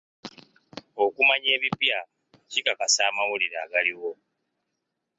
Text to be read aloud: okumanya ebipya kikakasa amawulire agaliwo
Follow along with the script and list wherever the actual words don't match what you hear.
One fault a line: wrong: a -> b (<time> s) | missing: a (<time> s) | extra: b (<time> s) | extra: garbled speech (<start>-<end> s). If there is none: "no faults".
no faults